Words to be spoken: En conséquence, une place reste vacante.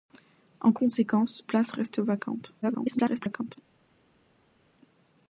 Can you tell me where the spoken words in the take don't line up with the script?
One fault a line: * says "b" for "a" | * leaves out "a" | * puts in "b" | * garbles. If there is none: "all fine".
* leaves out "une"
* garbles